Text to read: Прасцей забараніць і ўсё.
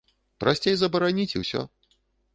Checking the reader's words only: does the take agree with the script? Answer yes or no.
yes